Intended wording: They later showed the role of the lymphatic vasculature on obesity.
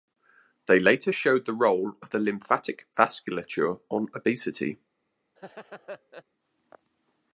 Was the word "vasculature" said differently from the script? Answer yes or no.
no